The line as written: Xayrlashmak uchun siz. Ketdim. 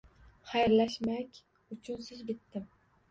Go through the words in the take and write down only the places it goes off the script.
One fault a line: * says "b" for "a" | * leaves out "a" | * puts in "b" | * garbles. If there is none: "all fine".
all fine